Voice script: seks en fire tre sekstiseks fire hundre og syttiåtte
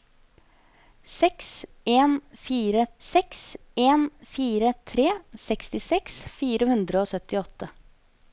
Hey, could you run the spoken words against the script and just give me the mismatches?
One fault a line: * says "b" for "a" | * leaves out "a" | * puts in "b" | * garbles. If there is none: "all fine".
* puts in "seks en fire"